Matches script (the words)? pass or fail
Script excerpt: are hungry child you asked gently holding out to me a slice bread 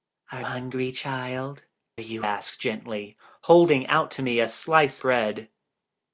pass